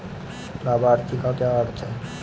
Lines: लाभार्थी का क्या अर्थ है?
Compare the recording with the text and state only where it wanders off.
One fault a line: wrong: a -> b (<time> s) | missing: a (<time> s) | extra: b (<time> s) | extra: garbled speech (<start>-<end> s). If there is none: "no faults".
no faults